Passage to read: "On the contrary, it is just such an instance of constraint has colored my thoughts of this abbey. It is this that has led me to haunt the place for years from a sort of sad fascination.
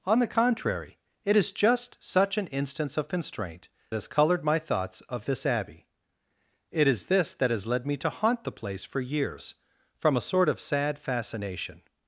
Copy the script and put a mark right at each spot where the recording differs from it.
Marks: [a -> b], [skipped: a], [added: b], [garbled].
"On the contrary, it is just such an instance of constraint has colored my thoughts of this abbey. It is this that has led me to haunt the place for years from a sort of sad fascination.